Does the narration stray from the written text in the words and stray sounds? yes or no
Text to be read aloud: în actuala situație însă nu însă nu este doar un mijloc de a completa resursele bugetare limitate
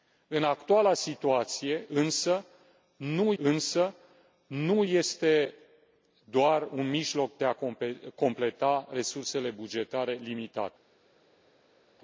no